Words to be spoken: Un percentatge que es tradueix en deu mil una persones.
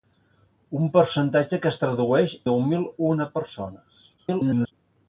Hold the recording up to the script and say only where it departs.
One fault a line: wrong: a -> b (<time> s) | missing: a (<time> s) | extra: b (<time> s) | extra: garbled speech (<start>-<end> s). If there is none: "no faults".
missing: en (2.4 s)
extra: garbled speech (4.2-4.7 s)